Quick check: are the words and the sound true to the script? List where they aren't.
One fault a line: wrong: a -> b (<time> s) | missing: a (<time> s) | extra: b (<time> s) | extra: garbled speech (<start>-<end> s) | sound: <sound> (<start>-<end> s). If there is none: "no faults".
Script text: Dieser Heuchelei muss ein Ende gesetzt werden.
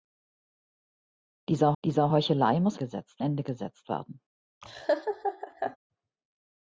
extra: dieser (1.8 s)
wrong: ein -> gesetzt (2.8 s)
sound: laugh (4.6-5.8 s)